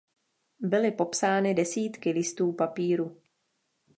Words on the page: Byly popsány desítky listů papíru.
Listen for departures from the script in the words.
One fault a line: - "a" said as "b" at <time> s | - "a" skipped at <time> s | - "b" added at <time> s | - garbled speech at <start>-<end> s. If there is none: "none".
none